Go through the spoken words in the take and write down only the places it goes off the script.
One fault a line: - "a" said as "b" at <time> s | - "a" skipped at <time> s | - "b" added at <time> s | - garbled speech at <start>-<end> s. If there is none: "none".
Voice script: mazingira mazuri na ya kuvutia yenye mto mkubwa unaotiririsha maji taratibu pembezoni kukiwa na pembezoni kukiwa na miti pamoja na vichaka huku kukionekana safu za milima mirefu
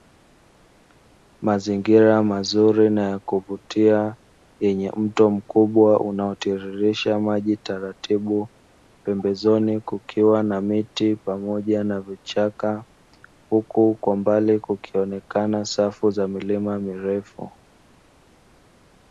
- "pembezoni kukiwa na" skipped at 10.6 s
- "kwa mbali" added at 13.9 s